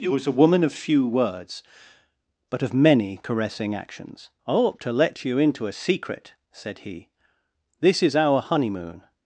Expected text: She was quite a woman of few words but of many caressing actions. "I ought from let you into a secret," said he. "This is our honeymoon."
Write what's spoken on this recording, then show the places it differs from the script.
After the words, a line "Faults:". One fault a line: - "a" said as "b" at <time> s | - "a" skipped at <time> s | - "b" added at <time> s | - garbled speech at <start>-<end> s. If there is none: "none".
She was a woman of few words but of many caressing actions. "I ought to let you into a secret," said he. "This is our honeymoon."
Faults:
- "quite" skipped at 0.2 s
- "from" said as "to" at 4.8 s